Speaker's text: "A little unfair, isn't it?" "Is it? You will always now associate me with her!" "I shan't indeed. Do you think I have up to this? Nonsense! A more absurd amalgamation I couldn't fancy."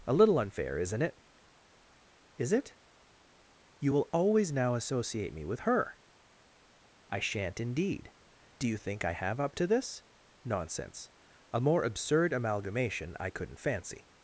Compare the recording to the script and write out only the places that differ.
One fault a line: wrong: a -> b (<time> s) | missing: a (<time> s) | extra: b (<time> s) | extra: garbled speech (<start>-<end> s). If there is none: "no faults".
no faults